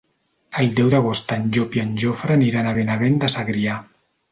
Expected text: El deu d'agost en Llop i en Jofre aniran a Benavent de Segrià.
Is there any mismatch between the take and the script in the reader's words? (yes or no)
no